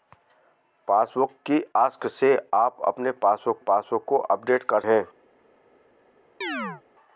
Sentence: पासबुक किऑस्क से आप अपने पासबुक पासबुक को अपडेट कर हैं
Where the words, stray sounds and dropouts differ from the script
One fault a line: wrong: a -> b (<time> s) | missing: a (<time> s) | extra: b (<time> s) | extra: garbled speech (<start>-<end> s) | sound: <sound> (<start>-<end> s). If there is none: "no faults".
sound: chirp (6.4-6.8 s)